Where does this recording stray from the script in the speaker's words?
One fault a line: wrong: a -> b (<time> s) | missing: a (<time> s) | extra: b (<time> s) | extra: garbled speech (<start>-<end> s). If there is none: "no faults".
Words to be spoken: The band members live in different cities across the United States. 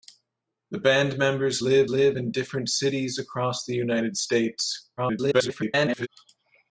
extra: live (1.9 s)
extra: garbled speech (5.0-6.1 s)